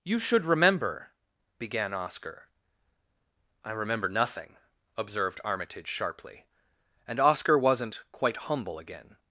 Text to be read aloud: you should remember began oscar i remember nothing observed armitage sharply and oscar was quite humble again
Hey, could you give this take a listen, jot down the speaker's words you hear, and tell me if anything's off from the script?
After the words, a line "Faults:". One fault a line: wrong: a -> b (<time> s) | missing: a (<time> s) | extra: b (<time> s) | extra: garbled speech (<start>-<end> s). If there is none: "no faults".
you should remember began oscar i remember nothing observed armitage sharply and oscar wasn't quite humble again
Faults:
wrong: was -> wasn't (7.6 s)